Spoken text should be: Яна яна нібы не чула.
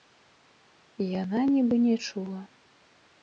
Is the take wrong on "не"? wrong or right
right